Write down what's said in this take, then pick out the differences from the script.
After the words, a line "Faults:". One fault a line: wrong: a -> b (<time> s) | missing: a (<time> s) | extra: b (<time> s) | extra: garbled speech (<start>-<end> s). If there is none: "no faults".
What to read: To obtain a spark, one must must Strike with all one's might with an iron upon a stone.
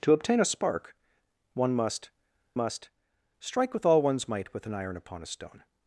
To obtain a spark, one must must Strike with all one's might with an iron upon a stone.
Faults:
no faults